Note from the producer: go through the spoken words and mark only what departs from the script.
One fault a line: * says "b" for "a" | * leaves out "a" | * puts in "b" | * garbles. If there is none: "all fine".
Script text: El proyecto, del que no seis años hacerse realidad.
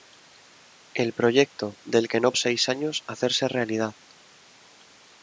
all fine